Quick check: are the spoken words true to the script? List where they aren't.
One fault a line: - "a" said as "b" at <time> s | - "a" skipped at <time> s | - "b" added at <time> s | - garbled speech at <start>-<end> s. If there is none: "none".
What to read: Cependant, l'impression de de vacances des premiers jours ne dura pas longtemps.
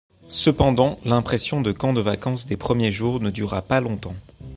- "camp" added at 1.7 s